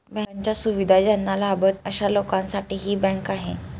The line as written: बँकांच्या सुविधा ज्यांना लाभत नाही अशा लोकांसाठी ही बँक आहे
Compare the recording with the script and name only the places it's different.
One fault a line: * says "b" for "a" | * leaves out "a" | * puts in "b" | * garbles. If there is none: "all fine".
* leaves out "नाही"